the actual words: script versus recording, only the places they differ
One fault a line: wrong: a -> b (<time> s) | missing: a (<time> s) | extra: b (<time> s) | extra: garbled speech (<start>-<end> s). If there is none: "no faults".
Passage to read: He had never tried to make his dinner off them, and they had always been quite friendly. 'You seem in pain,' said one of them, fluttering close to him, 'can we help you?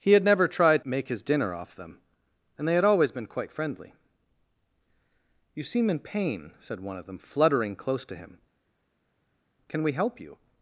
missing: to (0.8 s)